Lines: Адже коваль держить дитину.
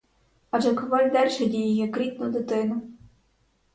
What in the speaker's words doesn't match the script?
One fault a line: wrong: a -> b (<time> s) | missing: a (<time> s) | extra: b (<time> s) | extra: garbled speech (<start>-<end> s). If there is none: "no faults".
extra: її як рідну (1.5 s)